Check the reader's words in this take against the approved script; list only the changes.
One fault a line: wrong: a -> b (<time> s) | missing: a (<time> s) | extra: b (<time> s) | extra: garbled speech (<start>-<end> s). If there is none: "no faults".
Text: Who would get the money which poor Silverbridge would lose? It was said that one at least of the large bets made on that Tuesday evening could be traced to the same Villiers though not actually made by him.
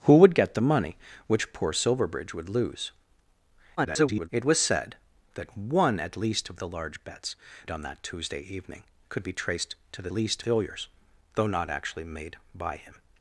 extra: garbled speech (3.8-4.3 s)
missing: made (7.4 s)
wrong: same -> least (10.1 s)